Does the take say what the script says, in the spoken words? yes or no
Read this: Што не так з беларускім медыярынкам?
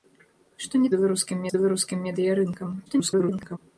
no